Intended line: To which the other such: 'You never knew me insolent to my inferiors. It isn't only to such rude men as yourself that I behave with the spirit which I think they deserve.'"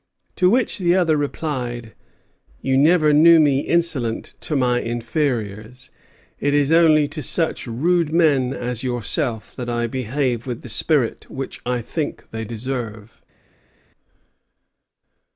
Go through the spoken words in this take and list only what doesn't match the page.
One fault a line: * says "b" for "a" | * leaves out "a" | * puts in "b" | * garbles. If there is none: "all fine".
* says "replied" for "such"
* says "is" for "isn't"